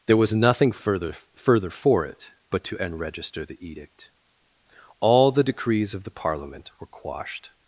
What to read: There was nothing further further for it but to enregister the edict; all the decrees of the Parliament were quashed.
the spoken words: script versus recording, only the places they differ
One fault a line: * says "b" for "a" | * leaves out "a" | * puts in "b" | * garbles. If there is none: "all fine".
all fine